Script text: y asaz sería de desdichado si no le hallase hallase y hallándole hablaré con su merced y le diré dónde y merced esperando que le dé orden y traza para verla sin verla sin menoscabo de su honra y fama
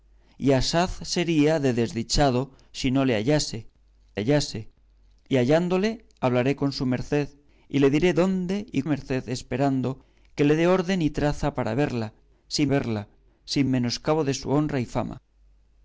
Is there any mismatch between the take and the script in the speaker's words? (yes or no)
no